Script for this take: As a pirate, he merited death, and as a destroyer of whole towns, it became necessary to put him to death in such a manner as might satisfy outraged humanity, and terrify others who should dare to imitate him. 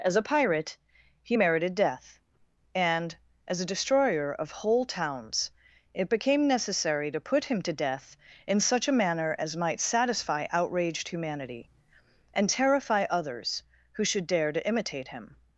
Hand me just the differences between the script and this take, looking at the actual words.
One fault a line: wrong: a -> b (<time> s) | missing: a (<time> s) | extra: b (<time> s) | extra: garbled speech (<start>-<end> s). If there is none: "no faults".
no faults